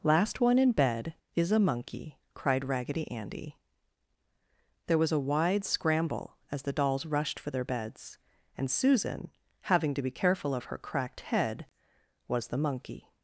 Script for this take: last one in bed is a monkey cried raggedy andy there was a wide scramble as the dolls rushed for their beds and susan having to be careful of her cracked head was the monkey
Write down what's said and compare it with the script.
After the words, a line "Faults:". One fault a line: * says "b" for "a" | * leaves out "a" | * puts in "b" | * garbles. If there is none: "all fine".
last one in bed is a monkey cried raggedy andy there was a wide scramble as the dolls rushed for their beds and susan having to be careful of her cracked head was the monkey
Faults:
all fine